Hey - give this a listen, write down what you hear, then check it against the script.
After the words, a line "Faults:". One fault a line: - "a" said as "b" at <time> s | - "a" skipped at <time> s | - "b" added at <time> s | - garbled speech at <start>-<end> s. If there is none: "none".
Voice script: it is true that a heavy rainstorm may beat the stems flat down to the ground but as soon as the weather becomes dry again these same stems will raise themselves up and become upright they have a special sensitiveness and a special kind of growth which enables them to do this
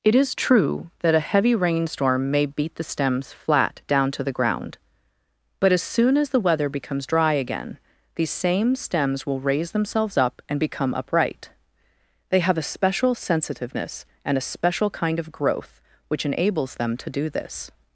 it is true that a heavy rainstorm may beat the stems flat down to the ground but as soon as the weather becomes dry again these same stems will raise themselves up and become upright they have a special sensitiveness and a special kind of growth which enables them to do this
Faults:
none